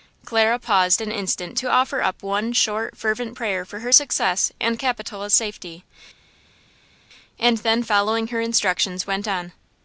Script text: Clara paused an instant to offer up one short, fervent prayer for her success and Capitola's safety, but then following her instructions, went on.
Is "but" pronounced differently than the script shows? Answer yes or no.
yes